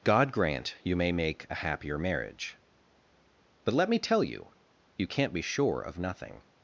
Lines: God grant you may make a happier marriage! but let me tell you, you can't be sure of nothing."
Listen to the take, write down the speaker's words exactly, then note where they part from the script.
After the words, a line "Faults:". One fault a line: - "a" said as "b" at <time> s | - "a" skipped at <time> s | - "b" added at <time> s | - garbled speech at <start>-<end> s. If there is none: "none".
God grant you may make a happier marriage! but let me tell you, you can't be sure of nothing."
Faults:
none